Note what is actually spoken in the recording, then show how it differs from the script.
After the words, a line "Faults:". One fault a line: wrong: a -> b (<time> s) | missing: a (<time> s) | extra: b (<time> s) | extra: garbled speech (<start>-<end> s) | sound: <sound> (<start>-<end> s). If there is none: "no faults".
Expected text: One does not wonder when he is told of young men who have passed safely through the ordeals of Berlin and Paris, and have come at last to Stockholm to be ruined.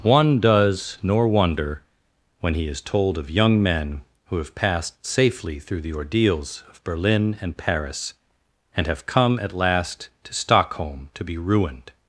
One does nor wonder when he is told of young men who have passed safely through the ordeals of Berlin and Paris, and have come at last to Stockholm to be ruined.
Faults:
wrong: not -> nor (1.0 s)